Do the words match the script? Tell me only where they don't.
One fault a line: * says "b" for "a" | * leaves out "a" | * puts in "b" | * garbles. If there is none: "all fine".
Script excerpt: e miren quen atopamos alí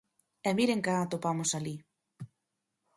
all fine